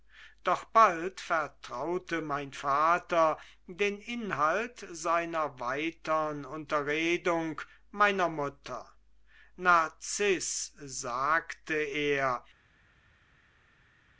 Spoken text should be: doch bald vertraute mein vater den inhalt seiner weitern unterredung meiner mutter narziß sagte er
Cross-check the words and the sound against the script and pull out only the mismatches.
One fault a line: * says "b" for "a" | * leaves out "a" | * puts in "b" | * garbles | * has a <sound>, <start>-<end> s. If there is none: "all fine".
all fine